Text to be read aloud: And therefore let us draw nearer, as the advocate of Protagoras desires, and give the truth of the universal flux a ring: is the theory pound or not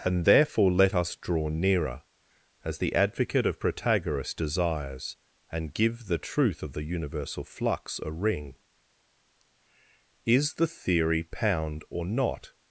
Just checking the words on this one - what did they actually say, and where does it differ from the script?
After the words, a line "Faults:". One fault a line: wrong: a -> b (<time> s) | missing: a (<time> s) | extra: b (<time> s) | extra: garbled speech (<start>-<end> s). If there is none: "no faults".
And therefore let us draw nearer, as the advocate of Protagoras desires, and give the truth of the universal flux a ring: is the theory pound or not
Faults:
no faults